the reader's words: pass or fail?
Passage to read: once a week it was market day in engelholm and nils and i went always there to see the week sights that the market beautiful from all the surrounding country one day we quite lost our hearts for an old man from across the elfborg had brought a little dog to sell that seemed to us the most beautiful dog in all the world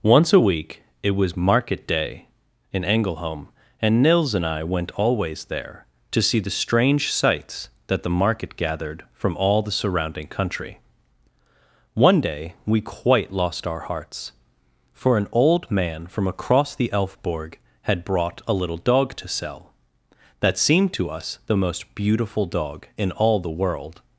fail